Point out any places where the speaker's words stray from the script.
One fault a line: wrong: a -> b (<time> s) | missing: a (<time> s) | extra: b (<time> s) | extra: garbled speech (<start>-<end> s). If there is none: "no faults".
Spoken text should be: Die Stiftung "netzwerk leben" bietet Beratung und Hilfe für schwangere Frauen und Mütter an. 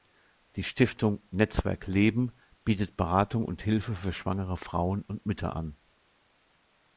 no faults